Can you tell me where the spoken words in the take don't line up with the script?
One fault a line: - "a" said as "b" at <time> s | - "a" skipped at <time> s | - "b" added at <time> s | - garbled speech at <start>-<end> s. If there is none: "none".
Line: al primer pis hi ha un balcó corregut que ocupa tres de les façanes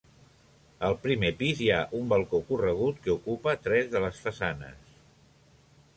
none